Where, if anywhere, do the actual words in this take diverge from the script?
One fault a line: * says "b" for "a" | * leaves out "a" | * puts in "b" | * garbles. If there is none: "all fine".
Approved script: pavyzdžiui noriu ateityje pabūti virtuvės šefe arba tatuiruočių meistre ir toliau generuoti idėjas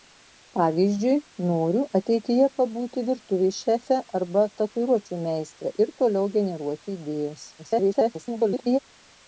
* garbles